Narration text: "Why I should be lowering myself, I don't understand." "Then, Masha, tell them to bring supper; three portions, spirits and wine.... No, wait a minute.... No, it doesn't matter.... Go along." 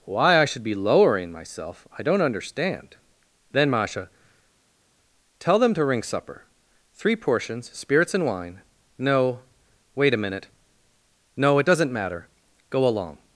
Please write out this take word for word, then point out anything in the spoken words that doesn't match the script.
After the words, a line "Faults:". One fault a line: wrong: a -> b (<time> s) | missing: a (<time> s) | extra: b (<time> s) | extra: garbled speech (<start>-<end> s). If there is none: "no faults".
"Why I should be lowering myself, I don't understand." "Then, Masha, tell them to ring supper; three portions, spirits and wine.... No, wait a minute.... No, it doesn't matter.... Go along."
Faults:
wrong: bring -> ring (5.8 s)